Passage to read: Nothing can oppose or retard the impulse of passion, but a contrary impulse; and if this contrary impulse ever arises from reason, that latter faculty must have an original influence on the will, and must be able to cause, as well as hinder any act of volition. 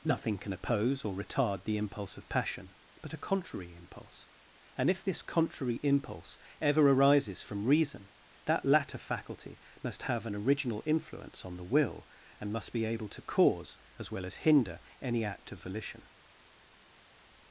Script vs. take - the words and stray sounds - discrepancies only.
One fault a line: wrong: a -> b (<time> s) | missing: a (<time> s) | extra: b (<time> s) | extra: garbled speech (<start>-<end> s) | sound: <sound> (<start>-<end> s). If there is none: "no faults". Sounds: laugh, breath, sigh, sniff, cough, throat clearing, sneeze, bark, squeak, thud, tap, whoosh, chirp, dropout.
no faults